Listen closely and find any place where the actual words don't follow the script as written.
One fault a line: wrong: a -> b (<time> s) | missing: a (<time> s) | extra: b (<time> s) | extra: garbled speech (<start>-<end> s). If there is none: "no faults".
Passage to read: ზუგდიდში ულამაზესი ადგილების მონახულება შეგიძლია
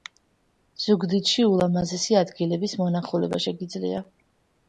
no faults